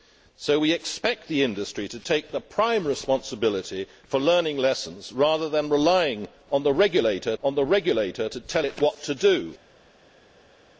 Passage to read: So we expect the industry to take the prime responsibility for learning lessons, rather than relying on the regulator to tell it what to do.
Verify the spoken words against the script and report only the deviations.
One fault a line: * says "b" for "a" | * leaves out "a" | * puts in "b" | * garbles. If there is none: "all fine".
* puts in "on the regulator"